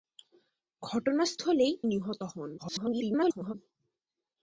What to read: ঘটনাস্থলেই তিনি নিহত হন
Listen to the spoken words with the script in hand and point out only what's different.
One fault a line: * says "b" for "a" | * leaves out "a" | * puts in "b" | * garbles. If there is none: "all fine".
* leaves out "তিনি"
* garbles